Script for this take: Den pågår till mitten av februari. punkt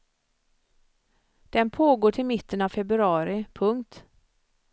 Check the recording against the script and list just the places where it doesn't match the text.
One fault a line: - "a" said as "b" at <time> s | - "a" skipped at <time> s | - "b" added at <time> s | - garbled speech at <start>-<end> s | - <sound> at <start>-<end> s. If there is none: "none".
none